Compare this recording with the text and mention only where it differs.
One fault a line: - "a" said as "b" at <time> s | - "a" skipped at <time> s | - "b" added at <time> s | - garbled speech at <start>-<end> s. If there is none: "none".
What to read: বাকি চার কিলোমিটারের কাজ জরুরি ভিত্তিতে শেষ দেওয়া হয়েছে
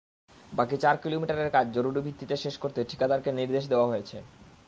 - "করতে ঠিকাদারকে নির্দেশ" added at 2.6 s